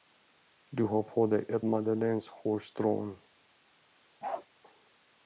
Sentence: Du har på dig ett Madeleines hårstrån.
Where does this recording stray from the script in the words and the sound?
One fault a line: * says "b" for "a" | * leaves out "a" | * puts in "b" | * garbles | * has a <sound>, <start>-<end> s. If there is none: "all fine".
* has a bark, 4.2-4.5 s